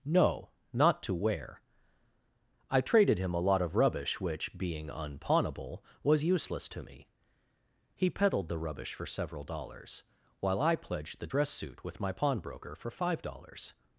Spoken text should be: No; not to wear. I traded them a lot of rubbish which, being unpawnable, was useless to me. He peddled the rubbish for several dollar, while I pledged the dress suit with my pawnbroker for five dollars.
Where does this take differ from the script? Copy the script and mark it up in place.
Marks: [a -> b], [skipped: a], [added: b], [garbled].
No; not to wear. I traded [them -> him] a lot of rubbish which, being unpawnable, was useless to me. He peddled the rubbish for several [dollar, -> dollars] while I pledged the dress suit with my pawnbroker for five dollars.